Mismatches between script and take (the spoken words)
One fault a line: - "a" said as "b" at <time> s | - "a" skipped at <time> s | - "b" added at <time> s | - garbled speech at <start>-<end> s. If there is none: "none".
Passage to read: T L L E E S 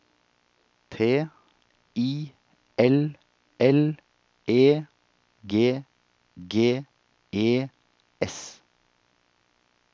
- "I" added at 1.9 s
- "G G" added at 5.4 s